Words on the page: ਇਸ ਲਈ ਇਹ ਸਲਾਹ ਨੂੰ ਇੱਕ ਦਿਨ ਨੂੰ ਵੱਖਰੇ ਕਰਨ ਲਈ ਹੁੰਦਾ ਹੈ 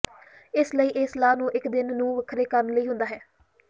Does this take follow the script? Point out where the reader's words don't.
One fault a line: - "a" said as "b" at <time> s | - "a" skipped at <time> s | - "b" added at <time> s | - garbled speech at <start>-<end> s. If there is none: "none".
none